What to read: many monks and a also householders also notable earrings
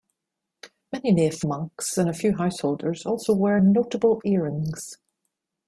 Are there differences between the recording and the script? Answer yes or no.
yes